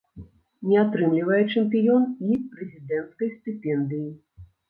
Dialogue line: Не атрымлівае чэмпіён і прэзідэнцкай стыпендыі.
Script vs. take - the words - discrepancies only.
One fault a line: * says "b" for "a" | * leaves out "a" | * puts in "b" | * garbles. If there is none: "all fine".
all fine